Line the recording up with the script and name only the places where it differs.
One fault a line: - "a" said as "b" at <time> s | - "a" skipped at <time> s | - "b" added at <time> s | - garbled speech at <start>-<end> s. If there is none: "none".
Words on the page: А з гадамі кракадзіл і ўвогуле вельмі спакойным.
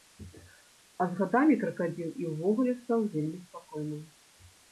- "стаў" added at 2.8 s